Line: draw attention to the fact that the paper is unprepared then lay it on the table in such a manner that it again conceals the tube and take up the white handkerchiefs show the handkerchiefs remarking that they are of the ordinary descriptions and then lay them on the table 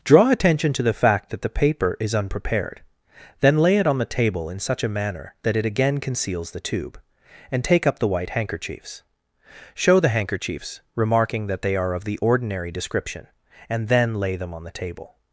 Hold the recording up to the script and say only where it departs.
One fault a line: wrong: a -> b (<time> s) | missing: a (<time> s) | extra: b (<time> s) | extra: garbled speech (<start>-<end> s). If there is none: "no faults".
wrong: descriptions -> description (12.7 s)